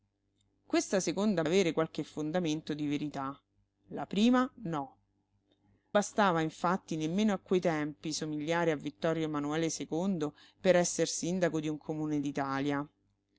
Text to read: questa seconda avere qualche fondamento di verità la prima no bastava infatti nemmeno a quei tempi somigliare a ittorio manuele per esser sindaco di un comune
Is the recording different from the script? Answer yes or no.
no